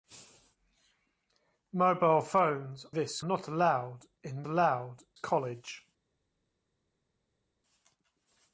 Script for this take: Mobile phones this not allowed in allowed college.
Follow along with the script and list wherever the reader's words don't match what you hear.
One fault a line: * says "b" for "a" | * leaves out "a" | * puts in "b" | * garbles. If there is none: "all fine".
all fine